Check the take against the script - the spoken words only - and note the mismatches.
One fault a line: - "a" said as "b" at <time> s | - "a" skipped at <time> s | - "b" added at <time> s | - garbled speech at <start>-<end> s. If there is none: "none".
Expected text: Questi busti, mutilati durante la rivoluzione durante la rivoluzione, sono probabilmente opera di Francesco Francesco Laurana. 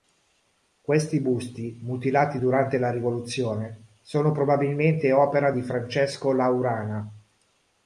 - "durante la rivoluzione" skipped at 3.8 s
- "Francesco" skipped at 6.3 s